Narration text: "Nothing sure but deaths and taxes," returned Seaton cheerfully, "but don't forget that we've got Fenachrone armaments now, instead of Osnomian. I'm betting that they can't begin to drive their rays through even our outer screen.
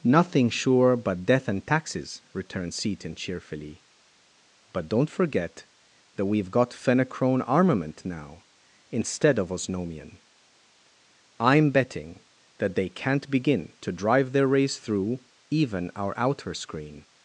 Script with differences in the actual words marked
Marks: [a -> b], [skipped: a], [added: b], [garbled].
"Nothing sure but [deaths -> death] and taxes," returned Seaton cheerfully, "but don't forget that we've got Fenachrone [armaments -> armament] now, instead of Osnomian. I'm betting that they can't begin to drive their rays through even our outer screen.